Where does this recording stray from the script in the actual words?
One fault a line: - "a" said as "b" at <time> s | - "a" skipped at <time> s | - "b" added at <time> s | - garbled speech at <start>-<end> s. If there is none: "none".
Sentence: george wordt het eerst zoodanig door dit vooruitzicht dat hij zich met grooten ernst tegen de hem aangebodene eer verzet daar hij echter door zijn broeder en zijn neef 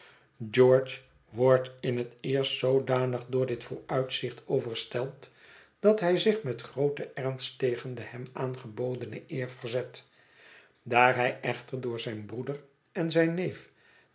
- "in" added at 1.8 s
- "overstelpt" added at 4.5 s